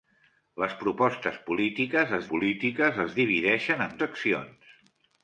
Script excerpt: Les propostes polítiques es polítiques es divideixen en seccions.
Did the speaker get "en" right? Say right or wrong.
right